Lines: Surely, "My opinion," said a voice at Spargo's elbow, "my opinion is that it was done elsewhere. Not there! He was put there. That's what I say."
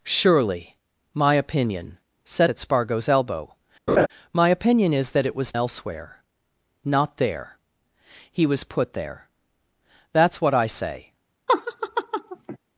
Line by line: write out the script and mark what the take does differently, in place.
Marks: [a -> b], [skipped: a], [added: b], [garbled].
Surely, "My opinion," said [skipped: a voice] at Spargo's elbow, "my opinion is that it was [skipped: done] elsewhere. Not there! He was put there. That's what I say."